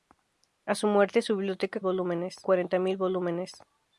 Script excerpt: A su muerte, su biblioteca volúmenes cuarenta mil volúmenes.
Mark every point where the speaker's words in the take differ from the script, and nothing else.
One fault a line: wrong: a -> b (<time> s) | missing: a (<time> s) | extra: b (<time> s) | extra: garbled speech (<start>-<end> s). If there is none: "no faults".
no faults